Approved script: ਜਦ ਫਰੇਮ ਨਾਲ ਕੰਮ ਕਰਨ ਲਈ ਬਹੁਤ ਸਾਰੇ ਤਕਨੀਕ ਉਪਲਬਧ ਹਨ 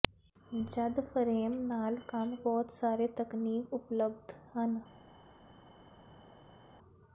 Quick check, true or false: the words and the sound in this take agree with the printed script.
false